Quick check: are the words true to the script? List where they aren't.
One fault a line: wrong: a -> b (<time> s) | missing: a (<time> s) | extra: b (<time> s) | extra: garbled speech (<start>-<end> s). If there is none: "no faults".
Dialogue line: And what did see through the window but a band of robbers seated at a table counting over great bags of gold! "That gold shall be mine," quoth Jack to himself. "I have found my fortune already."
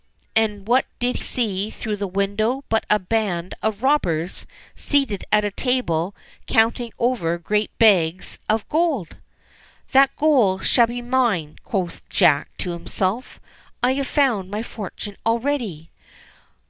no faults